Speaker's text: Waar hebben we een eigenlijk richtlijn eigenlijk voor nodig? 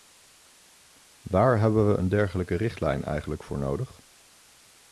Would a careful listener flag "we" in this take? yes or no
no